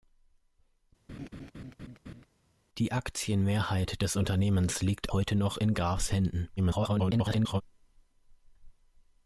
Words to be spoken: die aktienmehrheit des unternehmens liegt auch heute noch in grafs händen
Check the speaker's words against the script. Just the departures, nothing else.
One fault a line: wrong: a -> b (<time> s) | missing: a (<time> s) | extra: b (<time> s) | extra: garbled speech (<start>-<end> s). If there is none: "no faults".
missing: auch (5.1 s)
extra: garbled speech (6.6-7.6 s)